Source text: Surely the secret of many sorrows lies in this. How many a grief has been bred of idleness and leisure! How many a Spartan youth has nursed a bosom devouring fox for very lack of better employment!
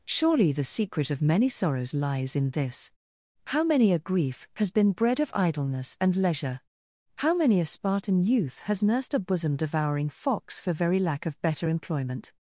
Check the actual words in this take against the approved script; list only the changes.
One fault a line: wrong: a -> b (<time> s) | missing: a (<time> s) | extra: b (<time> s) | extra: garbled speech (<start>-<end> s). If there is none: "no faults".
no faults